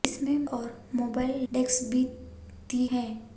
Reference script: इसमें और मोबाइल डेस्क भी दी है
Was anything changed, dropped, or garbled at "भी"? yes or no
no